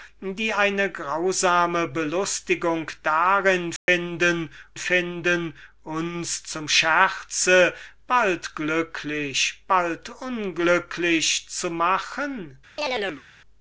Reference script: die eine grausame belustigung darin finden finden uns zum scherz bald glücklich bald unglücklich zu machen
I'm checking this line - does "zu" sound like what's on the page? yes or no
yes